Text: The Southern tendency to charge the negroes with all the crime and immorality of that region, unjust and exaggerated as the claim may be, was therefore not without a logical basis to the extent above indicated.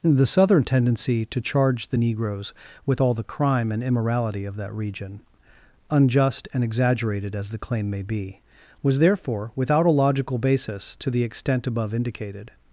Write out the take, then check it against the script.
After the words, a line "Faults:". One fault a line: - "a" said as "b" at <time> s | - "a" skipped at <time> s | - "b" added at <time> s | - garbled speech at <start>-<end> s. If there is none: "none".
The Southern tendency to charge the negroes with all the crime and immorality of that region, unjust and exaggerated as the claim may be, was therefore without a logical basis to the extent above indicated.
Faults:
- "not" skipped at 9.5 s